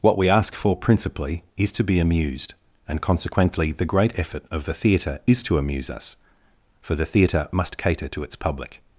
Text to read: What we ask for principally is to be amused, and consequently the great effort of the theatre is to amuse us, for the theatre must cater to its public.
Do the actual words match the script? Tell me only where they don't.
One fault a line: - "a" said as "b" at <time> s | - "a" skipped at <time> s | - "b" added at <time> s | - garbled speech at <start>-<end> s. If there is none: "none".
none